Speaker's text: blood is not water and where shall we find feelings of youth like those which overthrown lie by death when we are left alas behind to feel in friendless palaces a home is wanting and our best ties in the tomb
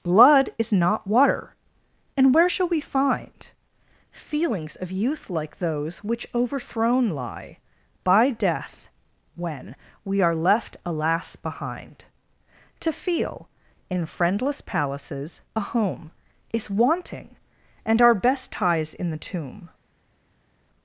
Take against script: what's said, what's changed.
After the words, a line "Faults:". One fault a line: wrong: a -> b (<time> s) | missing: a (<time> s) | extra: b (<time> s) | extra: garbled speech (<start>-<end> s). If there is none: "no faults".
blood is not water and where shall we find feelings of youth like those which overthrown lie by death when we are left alas behind to feel in friendless palaces a home is wanting and our best ties in the tomb
Faults:
no faults